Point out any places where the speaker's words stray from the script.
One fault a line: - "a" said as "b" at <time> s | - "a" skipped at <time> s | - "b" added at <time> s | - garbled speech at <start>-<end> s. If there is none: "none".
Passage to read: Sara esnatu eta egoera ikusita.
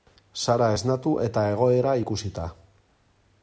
none